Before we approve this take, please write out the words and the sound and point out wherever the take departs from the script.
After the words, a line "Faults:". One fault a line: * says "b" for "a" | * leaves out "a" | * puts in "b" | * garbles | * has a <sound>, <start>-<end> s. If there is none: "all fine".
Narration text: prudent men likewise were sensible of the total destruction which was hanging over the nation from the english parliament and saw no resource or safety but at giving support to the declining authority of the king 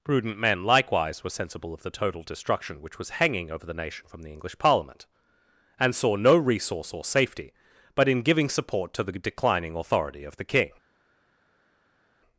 prudent men likewise were sensible of the total destruction which was hanging over the nation from the english parliament and saw no resource or safety but in giving support to the declining authority of the king
Faults:
* says "in" for "at"